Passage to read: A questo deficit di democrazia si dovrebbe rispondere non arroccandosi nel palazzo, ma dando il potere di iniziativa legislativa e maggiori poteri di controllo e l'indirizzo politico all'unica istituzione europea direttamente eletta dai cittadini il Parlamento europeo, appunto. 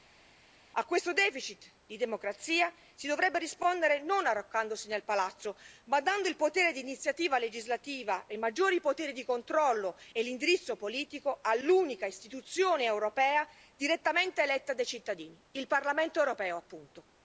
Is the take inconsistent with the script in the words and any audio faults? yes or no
no